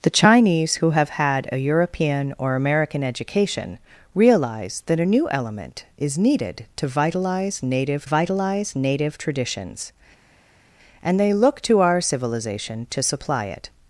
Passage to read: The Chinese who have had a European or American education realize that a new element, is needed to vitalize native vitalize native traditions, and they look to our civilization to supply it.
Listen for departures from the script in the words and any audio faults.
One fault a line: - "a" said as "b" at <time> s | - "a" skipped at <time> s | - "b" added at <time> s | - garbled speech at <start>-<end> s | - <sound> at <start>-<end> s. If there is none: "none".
none